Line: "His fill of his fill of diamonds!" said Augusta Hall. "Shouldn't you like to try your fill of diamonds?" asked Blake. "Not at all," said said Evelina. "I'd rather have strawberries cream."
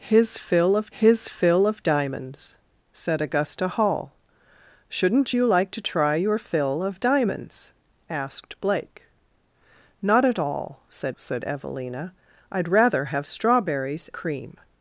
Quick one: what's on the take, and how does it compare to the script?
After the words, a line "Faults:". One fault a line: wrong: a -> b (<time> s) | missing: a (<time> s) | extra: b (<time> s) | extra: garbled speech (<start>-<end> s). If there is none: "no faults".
"His fill of his fill of diamonds!" said Augusta Hall. "Shouldn't you like to try your fill of diamonds?" asked Blake. "Not at all," said said Evelina. "I'd rather have strawberries cream."
Faults:
no faults